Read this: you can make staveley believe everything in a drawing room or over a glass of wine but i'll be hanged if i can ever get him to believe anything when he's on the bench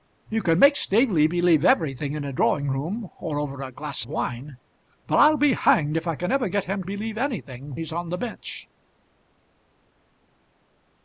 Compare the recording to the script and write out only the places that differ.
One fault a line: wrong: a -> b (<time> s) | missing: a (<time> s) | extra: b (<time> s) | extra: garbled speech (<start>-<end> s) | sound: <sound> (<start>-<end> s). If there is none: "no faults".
missing: of (4.0 s)
missing: to (6.8 s)
missing: when (7.7 s)